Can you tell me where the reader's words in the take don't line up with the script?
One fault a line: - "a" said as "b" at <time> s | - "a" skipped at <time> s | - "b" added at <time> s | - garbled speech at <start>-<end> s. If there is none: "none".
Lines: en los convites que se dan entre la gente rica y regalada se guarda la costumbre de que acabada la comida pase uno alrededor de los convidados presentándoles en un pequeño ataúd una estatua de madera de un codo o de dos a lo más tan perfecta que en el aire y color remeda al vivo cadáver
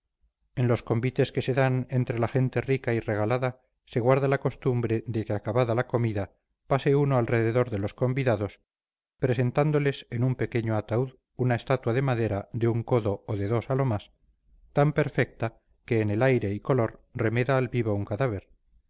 - "un" added at 17.9 s